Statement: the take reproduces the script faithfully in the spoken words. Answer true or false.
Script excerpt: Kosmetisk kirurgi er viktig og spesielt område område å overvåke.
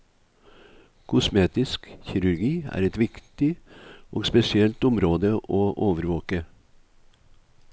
false